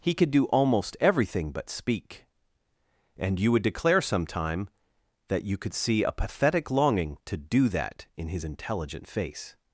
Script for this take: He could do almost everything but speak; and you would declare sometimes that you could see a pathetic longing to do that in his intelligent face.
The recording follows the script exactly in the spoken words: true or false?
false